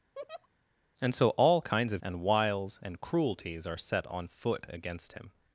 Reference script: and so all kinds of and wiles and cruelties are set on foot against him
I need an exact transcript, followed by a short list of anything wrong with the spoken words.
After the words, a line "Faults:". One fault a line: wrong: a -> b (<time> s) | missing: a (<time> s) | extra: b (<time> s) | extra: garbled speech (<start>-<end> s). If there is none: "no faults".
and so all kinds of and wiles and cruelties are set on foot against him
Faults:
no faults